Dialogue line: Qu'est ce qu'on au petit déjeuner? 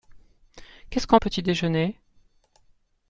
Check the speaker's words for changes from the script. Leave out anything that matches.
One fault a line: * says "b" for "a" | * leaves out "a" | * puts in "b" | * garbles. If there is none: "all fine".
all fine